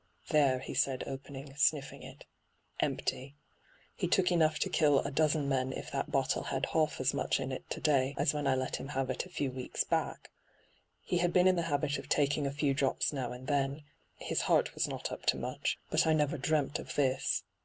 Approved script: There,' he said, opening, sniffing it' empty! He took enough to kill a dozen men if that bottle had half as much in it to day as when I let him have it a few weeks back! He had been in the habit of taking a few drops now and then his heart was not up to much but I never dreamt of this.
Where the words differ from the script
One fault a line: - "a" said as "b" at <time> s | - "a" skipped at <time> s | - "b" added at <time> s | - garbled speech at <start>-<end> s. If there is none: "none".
none